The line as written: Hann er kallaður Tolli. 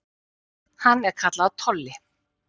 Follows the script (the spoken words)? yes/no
yes